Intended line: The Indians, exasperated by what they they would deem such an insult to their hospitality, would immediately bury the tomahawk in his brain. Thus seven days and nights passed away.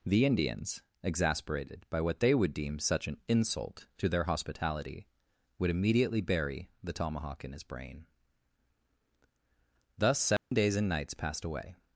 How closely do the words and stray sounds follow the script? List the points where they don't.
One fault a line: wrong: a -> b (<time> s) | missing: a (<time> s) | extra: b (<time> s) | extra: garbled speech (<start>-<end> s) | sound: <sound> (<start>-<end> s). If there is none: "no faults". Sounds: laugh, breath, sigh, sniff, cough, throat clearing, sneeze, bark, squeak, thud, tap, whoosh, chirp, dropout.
missing: they (2.3 s)
sound: dropout (10.4-10.5 s)